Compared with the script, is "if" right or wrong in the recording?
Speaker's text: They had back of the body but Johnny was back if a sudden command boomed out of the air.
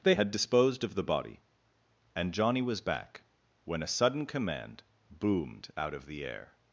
wrong